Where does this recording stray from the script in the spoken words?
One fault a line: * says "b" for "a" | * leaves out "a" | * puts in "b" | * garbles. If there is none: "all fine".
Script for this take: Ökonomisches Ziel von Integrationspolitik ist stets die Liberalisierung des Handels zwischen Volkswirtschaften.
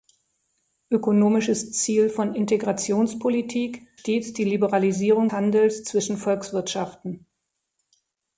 * leaves out "ist"
* leaves out "des"